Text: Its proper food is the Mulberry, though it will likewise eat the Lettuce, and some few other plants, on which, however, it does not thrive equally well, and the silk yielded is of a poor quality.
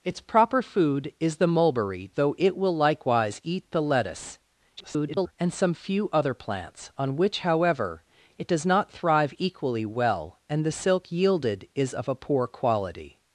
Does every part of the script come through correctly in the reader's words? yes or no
no